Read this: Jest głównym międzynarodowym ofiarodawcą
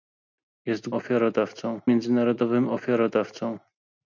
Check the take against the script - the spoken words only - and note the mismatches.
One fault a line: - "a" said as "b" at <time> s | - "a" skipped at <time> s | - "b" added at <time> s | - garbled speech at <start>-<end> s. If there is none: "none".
- "głównym" said as "ofiarodawcą" at 0.9 s